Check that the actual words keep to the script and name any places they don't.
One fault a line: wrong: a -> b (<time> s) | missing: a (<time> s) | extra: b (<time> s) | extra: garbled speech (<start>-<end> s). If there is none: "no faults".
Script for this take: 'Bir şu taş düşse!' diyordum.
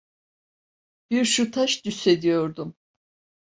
no faults